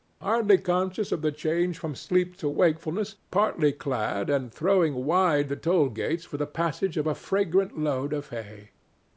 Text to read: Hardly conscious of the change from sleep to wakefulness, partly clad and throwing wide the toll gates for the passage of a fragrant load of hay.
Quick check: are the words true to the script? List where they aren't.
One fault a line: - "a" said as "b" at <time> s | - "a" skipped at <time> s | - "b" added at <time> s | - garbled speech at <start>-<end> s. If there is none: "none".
none